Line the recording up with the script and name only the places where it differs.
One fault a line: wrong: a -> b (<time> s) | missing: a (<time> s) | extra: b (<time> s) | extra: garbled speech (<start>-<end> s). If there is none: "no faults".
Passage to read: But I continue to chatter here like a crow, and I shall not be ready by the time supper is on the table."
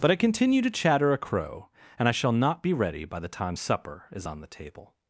missing: here like (1.1 s)